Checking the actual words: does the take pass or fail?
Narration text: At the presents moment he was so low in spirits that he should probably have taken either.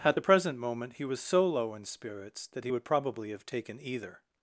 fail